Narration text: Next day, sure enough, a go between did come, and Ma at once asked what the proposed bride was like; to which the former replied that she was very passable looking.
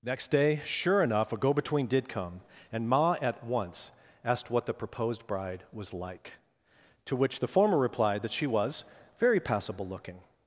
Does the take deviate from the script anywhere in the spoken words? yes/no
no